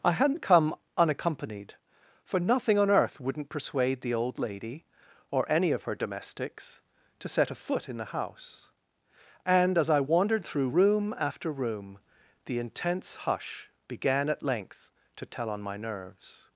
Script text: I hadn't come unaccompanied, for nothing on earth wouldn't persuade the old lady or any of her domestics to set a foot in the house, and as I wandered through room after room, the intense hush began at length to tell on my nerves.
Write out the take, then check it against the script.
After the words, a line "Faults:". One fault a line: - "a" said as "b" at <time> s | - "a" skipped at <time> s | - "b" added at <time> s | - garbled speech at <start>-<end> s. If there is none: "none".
I hadn't come unaccompanied, for nothing on earth wouldn't persuade the old lady or any of her domestics to set a foot in the house, and as I wandered through room after room, the intense hush began at length to tell on my nerves.
Faults:
none